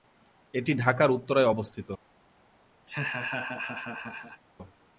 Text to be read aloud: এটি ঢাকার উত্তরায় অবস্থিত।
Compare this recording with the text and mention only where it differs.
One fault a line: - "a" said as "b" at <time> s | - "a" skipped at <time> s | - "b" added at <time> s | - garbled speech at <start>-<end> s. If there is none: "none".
none